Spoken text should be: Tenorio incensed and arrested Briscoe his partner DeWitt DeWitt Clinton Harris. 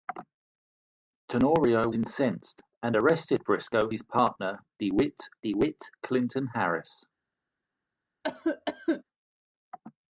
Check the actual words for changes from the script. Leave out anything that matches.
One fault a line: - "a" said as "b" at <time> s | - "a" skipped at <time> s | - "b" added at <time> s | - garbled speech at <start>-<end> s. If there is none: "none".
none